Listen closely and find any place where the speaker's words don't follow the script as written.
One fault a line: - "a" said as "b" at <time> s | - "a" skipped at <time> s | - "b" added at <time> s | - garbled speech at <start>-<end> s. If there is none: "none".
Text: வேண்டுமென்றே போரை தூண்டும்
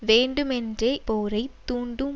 none